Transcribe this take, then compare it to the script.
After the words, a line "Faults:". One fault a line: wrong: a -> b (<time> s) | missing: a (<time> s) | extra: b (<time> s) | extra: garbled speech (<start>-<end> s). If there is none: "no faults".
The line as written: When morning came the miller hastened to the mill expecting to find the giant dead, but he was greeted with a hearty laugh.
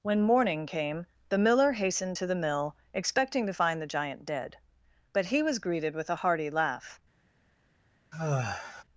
When morning came the miller hastened to the mill expecting to find the giant dead, but he was greeted with a hearty laugh.
Faults:
no faults